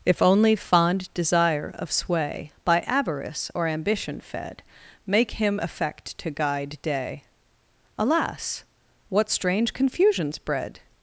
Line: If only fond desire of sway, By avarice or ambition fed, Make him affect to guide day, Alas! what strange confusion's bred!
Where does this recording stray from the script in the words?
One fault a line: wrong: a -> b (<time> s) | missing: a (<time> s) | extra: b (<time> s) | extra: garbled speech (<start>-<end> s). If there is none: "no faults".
no faults